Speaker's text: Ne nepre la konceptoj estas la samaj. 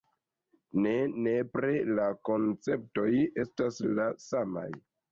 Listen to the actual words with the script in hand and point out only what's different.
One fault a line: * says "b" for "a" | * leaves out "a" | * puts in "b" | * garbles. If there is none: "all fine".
all fine